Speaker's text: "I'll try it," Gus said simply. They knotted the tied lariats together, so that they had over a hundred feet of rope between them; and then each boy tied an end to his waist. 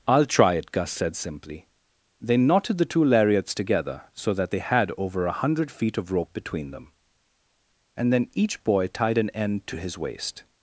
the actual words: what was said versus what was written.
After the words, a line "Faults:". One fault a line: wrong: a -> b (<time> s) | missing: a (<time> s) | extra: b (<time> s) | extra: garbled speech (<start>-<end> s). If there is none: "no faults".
"I'll try it," Gus said simply. They knotted the two lariats together, so that they had over a hundred feet of rope between them; and then each boy tied an end to his waist.
Faults:
wrong: tied -> two (2.9 s)